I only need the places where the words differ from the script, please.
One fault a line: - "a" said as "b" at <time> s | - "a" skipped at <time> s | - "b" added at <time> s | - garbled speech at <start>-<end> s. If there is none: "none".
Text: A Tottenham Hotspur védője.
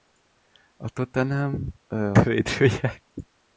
- "Hotspur" skipped at 1.6 s